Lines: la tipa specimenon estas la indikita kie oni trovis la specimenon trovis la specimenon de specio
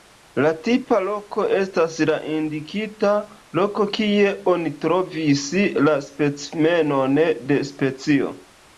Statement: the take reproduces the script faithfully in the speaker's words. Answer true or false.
false